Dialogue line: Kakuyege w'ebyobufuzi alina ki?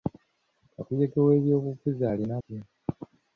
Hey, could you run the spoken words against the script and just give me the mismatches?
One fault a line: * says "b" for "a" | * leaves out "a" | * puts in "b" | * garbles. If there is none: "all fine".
all fine